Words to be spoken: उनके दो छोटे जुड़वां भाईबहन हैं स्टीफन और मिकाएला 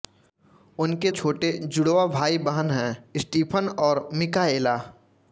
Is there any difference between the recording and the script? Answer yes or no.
yes